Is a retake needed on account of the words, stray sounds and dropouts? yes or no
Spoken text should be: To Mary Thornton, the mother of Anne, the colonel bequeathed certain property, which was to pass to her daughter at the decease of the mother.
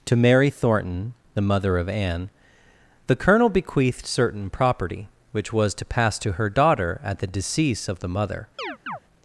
yes